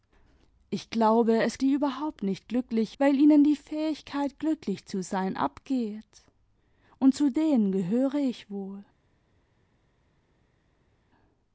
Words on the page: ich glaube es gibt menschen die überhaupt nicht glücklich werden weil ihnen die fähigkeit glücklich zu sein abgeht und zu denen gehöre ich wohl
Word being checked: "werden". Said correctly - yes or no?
no